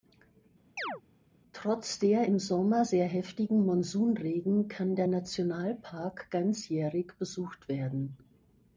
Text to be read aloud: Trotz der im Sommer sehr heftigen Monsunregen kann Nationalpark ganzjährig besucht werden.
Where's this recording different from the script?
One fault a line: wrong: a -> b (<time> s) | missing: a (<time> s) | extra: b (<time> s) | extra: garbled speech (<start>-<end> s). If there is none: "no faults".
extra: der (5.0 s)